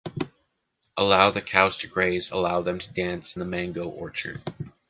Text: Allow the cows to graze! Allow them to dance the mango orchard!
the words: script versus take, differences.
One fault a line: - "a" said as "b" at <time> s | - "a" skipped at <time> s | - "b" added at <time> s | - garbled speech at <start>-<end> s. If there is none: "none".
none